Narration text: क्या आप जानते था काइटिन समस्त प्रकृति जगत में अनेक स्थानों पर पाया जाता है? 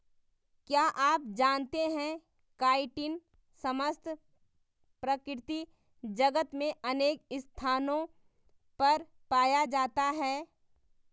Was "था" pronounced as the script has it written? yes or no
no